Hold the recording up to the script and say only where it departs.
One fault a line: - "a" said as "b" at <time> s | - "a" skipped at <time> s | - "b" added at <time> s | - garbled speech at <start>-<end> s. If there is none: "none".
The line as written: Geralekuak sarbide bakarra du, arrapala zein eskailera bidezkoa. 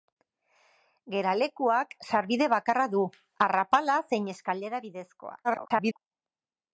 - garbled speech at 5.4-6.0 s